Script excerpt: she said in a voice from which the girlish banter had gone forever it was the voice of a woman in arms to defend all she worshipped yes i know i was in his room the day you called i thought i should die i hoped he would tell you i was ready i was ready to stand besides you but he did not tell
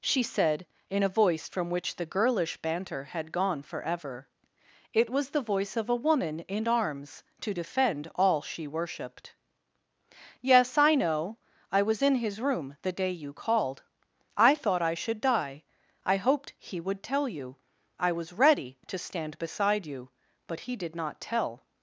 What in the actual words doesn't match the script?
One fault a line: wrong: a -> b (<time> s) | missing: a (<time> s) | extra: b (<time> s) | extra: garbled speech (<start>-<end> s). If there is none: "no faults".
missing: i was ready (18.8 s)
wrong: besides -> beside (19.4 s)